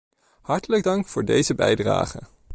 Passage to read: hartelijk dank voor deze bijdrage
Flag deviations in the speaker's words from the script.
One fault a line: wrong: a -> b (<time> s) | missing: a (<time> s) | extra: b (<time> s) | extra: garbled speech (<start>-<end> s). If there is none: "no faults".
no faults